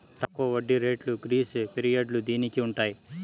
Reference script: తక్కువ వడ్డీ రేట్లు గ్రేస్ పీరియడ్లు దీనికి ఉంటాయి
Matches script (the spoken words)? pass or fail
pass